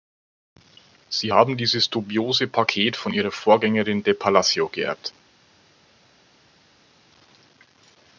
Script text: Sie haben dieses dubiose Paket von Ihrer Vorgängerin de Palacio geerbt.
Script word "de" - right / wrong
right